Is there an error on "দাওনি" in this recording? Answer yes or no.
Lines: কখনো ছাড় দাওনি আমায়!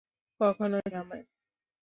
yes